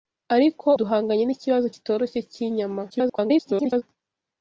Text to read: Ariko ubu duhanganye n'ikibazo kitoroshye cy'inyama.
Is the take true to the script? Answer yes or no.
no